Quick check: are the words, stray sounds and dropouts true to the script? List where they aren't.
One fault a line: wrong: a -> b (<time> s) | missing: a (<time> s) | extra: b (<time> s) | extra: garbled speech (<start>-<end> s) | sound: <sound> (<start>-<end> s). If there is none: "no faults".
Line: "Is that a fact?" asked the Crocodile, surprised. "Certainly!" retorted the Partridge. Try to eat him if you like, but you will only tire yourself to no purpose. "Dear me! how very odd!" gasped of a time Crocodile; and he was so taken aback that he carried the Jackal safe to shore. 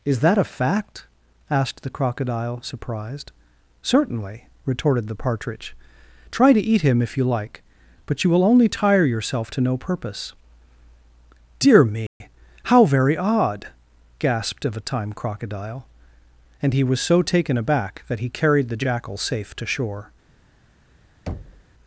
sound: dropout (12.1-12.2 s)
sound: thud (21.3-21.6 s)